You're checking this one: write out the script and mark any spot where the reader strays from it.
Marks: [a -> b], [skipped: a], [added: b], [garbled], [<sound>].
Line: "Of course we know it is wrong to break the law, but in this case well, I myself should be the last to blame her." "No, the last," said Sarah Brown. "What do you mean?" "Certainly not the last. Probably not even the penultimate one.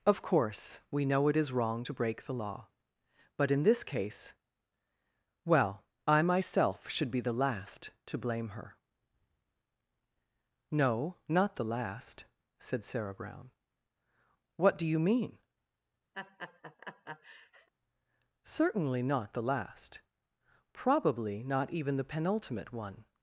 "Of course we know it is wrong to break the law, but in this case well, I myself should be the last to blame her." "No, [added: not] the last," said Sarah Brown. "What do you mean?" [laugh] "Certainly not the last. Probably not even the penultimate one.